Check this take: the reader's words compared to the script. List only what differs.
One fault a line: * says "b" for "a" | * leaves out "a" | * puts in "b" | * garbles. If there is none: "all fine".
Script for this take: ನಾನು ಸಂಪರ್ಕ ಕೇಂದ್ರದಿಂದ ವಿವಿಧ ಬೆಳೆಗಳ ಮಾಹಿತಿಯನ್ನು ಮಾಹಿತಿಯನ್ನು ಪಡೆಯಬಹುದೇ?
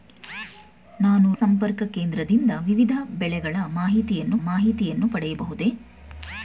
all fine